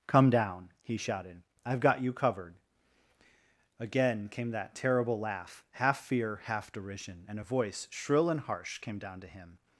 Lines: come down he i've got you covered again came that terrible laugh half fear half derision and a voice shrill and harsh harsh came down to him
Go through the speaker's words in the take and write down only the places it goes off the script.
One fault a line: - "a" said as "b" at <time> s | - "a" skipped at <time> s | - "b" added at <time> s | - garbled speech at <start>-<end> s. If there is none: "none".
- "shouted" added at 1.0 s
- "harsh" skipped at 8.8 s